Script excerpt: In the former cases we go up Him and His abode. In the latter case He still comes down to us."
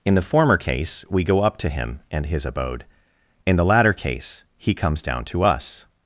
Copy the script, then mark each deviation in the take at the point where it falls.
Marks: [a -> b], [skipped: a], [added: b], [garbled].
In the former [cases -> case] we go up [added: to] Him and His abode. In the latter case He [skipped: still] comes down to us."